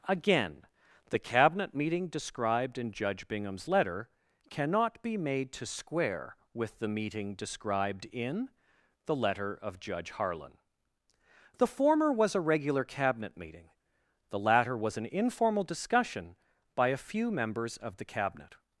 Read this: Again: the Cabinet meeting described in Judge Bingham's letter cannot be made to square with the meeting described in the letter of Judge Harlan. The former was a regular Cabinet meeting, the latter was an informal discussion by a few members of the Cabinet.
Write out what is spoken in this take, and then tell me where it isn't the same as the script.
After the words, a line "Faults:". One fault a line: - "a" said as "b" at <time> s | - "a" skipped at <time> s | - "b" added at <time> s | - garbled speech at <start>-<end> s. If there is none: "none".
Again: the Cabinet meeting described in Judge Bingham's letter cannot be made to square with the meeting described in the letter of Judge Harlan. The former was a regular Cabinet meeting, the latter was an informal discussion by a few members of the Cabinet.
Faults:
none